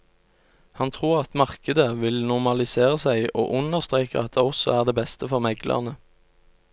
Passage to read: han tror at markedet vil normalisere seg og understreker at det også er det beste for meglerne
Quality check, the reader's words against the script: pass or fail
pass